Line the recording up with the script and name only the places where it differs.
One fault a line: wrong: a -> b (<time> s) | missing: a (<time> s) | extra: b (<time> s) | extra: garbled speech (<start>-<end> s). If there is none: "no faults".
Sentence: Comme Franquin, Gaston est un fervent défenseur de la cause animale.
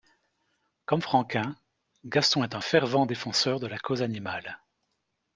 no faults